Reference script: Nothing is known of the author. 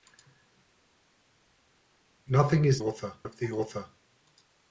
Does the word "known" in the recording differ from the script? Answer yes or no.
yes